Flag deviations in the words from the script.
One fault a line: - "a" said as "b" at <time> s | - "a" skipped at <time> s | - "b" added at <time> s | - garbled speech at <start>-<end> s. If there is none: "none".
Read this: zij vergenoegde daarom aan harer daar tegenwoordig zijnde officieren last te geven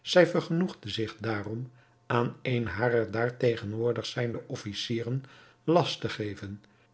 - "zich" added at 0.9 s
- "een" added at 2.4 s